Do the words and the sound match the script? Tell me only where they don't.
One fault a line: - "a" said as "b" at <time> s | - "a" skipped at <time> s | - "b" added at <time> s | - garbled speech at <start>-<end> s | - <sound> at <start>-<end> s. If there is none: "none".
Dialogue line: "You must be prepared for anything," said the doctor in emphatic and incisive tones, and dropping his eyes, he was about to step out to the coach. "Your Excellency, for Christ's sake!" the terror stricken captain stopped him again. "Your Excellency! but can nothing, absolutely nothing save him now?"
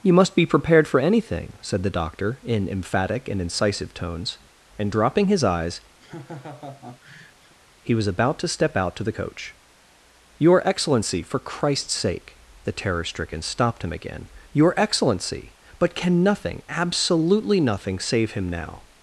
- laugh at 6.0-7.5 s
- "captain" skipped at 13.4 s